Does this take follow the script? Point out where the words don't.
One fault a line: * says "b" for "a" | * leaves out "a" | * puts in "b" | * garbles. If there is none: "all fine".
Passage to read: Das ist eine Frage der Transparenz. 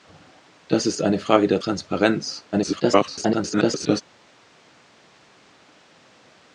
* garbles